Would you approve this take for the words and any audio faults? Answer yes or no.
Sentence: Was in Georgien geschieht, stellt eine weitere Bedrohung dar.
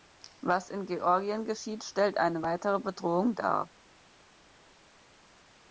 yes